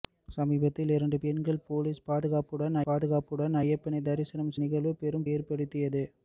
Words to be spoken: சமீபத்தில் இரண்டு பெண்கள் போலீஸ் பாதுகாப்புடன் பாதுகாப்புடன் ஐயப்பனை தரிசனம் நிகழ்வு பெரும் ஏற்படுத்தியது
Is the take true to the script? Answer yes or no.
yes